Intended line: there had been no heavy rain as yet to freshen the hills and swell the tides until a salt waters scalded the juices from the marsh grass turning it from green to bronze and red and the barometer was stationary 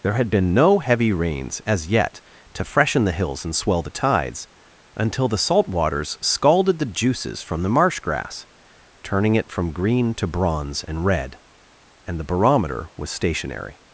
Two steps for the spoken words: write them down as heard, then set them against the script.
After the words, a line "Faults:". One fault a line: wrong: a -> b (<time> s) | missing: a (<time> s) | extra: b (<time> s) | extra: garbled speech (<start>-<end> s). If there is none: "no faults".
there had been no heavy rains as yet to freshen the hills and swell the tides until the salt waters scalded the juices from the marsh grass turning it from green to bronze and red and the barometer was stationary
Faults:
wrong: rain -> rains (1.1 s)
wrong: a -> the (5.3 s)